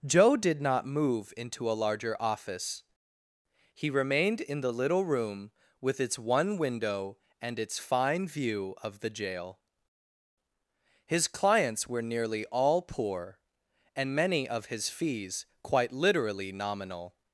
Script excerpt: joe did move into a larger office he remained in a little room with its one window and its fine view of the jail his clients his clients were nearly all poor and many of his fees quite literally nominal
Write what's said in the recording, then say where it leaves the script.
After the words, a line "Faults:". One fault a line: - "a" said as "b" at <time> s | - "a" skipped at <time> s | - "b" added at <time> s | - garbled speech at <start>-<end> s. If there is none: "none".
joe did not move into a larger office he remained in the little room with its one window and its fine view of the jail his clients were nearly all poor and many of his fees quite literally nominal
Faults:
- "not" added at 0.6 s
- "a" said as "the" at 4.6 s
- "his clients" skipped at 11.9 s